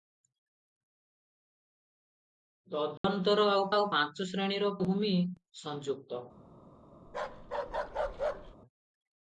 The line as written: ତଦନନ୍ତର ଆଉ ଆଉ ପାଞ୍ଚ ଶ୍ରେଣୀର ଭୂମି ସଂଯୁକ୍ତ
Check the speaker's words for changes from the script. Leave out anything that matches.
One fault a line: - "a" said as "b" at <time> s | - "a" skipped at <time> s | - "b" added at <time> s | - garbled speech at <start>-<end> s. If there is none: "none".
none